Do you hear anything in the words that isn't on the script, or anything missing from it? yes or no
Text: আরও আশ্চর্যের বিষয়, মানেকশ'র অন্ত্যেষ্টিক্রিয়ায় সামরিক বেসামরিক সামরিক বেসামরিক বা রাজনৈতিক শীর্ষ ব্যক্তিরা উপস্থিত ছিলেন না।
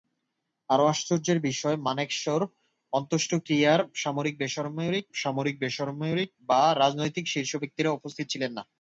no